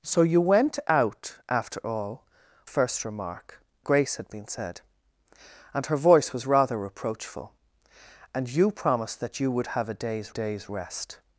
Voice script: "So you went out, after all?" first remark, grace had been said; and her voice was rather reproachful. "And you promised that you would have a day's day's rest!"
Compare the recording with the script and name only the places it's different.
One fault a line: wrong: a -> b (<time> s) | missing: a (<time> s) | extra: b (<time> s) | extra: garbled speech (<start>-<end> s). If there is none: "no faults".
no faults